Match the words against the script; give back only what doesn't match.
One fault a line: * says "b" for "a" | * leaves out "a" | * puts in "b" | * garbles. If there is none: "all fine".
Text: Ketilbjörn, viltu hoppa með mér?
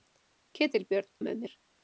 * leaves out "viltu hoppa"